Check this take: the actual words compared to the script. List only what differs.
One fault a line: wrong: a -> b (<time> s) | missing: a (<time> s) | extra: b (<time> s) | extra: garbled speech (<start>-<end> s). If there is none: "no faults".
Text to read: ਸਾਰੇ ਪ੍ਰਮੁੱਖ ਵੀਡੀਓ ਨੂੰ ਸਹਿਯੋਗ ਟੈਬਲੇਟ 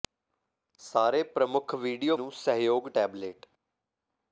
no faults